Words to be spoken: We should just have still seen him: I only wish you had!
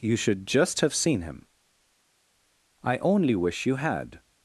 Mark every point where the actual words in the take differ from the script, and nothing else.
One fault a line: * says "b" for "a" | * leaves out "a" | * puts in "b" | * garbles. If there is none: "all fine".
* says "You" for "We"
* leaves out "still"